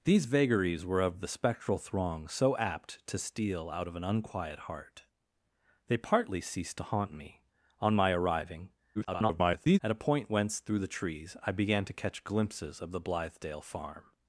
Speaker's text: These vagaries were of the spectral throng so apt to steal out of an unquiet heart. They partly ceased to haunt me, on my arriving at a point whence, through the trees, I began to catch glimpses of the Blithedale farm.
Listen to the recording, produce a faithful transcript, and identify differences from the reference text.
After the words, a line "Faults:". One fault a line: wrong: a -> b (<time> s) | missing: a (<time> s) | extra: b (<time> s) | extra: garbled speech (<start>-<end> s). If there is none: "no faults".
These vagaries were of the spectral throng so apt to steal out of an unquiet heart. They partly ceased to haunt me, on my arriving [garbled] at a point whence, through the trees, I began to catch glimpses of the Blithedale farm.
Faults:
extra: garbled speech (8.9-9.8 s)